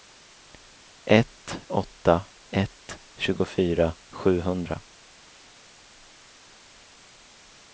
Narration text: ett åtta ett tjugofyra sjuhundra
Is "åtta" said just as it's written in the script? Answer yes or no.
yes